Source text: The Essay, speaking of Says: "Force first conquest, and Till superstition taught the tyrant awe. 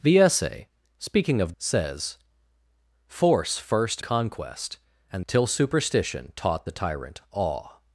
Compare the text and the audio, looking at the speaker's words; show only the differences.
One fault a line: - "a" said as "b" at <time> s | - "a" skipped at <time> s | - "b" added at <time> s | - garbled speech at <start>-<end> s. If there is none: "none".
none